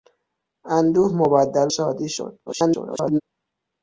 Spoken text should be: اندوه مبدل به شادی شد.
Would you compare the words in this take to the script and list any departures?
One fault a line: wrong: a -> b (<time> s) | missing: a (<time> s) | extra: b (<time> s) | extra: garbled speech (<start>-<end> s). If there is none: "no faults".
missing: به (1.7 s)
extra: garbled speech (2.5-3.2 s)